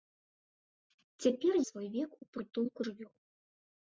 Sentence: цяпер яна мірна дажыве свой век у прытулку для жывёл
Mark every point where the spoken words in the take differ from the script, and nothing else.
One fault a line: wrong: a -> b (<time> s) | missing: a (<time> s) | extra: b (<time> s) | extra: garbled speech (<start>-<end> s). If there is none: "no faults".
missing: яна мірна дажыве (1.5 s)
missing: для (2.8 s)